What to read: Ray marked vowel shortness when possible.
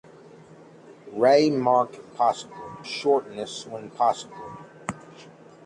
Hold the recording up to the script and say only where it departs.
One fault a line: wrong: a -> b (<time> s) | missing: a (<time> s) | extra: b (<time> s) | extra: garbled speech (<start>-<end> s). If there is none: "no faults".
wrong: vowel -> possible (2.1 s)